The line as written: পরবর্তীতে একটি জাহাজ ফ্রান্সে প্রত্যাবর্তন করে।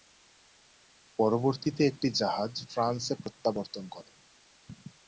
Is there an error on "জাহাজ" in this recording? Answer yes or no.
no